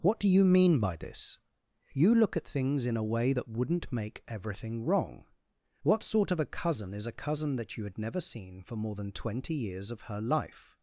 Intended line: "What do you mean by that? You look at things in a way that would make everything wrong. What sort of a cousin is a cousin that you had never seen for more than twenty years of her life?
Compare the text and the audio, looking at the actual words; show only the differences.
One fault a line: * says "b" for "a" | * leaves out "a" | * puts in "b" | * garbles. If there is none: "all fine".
* says "this" for "that"
* says "wouldn't" for "would"